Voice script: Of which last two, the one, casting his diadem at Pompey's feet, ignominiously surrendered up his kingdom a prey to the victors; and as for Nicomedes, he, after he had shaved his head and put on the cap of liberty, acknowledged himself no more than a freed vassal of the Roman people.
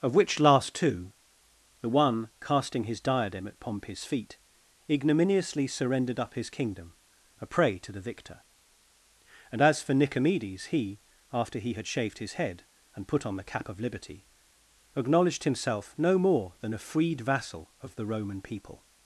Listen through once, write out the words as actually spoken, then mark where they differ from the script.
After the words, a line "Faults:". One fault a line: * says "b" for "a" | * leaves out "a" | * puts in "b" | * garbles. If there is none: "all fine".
Of which last two, the one, casting his diadem at Pompey's feet, ignominiously surrendered up his kingdom a prey to the victor; and as for Nicomedes, he, after he had shaved his head and put on the cap of liberty, acknowledged himself no more than a freed vassal of the Roman people.
Faults:
* says "victor" for "victors"